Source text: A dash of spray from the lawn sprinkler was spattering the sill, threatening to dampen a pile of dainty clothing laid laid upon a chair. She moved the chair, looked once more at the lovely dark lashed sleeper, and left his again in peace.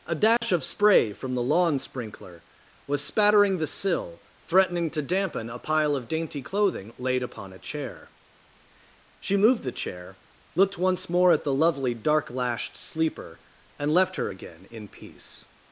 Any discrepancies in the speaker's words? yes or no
yes